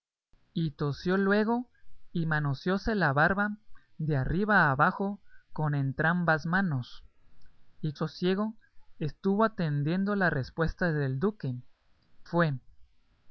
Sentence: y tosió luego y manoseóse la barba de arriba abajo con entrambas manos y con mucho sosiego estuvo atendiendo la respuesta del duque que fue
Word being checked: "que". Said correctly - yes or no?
no